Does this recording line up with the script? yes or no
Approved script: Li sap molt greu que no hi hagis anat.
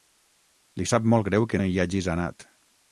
no